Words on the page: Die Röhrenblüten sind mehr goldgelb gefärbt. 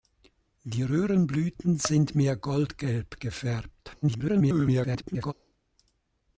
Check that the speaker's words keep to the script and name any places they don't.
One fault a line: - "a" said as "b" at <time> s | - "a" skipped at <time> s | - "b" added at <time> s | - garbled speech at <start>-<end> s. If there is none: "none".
- garbled speech at 4.0-5.3 s